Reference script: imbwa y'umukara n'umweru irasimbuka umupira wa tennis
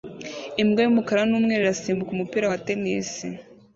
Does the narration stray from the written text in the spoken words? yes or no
no